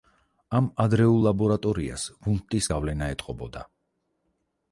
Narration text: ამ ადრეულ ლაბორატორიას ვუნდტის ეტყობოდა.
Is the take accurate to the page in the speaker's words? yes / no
no